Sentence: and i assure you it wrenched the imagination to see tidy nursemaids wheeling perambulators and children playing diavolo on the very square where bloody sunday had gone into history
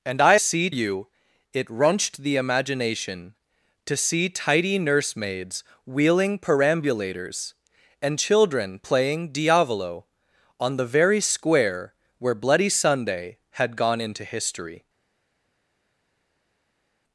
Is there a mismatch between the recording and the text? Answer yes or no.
yes